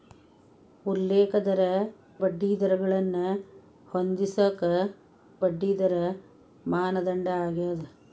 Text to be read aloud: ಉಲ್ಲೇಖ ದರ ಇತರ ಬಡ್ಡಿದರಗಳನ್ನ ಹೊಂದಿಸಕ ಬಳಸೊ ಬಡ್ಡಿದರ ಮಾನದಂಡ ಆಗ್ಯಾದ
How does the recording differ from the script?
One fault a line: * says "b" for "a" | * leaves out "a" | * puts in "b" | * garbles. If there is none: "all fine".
* leaves out "ಇತರ"
* leaves out "ಬಳಸೊ"